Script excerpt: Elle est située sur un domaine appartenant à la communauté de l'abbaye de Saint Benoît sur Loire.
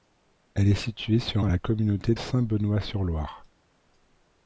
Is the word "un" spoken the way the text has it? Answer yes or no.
no